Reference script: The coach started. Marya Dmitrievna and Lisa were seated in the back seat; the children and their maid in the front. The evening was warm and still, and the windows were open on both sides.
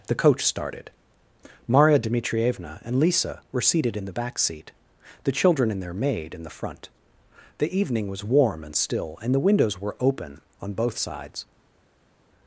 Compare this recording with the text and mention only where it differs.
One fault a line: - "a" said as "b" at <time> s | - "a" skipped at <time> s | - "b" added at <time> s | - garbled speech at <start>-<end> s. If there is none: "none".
none